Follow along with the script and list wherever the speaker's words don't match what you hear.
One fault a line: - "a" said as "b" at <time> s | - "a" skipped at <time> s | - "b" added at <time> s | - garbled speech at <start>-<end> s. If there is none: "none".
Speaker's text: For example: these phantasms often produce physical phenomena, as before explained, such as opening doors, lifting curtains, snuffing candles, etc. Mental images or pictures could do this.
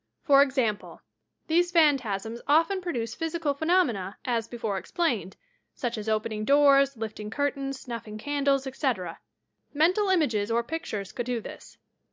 none